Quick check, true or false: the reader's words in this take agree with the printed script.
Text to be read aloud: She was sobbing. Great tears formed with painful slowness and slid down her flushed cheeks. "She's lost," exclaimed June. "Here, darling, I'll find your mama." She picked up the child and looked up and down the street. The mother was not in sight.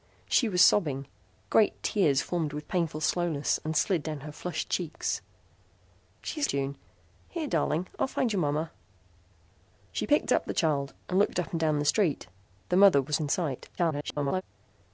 false